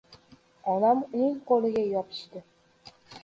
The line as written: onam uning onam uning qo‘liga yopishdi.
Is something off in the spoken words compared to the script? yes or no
yes